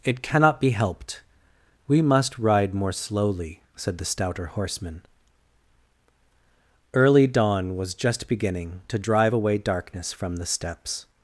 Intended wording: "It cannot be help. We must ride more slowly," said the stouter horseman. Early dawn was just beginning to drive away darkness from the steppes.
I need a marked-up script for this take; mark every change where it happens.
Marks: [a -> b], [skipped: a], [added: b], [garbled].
"It cannot be [help. -> helped] We must ride more slowly," said the stouter horseman. Early dawn was just beginning to drive away darkness from the steppes.